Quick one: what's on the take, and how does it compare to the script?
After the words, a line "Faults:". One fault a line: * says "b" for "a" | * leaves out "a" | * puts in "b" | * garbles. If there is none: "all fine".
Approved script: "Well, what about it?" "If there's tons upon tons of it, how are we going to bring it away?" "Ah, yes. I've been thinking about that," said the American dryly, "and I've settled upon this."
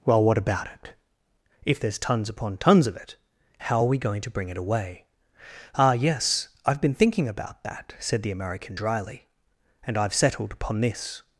"Well, what about it?" "If there's tons upon tons of it, how are we going to bring it away?" "Ah, yes. I've been thinking about that," said the American dryly, "and I've settled upon this."
Faults:
all fine